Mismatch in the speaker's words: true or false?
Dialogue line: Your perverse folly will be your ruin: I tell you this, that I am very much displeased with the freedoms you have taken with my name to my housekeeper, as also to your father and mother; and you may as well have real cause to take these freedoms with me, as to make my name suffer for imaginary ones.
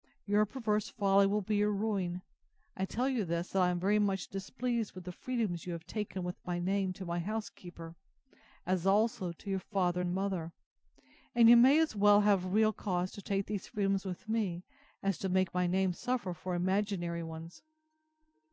false